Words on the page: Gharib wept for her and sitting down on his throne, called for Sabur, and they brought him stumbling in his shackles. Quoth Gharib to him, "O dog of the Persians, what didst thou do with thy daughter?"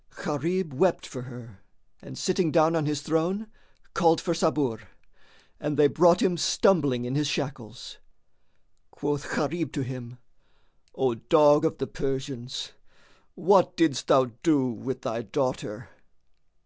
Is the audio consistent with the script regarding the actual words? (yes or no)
yes